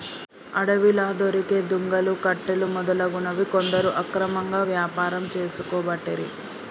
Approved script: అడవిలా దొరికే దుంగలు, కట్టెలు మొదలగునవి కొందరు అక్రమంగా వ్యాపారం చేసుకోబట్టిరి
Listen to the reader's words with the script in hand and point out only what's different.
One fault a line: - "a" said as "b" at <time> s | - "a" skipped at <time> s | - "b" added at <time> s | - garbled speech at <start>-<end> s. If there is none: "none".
none